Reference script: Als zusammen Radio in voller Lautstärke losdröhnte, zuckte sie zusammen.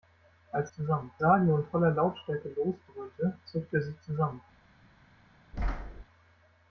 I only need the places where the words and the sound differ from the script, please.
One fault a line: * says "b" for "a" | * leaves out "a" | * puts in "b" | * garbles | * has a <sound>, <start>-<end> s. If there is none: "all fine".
* has a thud, 5.5-6.0 s